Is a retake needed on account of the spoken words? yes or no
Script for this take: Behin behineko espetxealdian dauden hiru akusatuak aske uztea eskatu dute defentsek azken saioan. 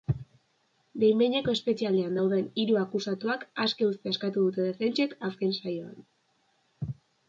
no